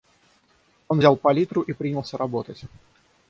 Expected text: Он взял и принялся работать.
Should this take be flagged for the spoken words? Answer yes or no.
yes